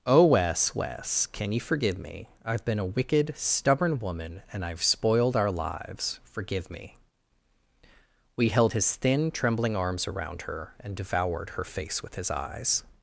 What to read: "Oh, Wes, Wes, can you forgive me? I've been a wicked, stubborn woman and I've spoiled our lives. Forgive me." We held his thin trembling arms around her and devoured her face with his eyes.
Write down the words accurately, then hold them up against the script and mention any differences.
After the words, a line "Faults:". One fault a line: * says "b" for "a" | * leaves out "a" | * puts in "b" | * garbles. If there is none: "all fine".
"Oh, Wes, Wes, can you forgive me? I've been a wicked, stubborn woman and I've spoiled our lives. Forgive me." We held his thin trembling arms around her and devoured her face with his eyes.
Faults:
all fine